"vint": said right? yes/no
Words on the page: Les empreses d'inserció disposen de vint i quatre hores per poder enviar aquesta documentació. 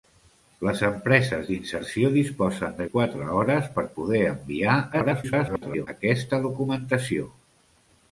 no